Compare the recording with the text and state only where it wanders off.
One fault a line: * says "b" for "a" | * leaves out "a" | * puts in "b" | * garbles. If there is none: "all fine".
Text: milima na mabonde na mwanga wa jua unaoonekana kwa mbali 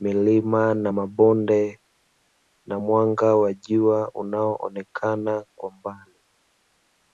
all fine